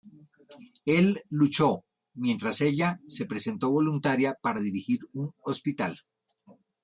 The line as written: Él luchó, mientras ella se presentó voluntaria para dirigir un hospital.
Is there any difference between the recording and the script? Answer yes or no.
no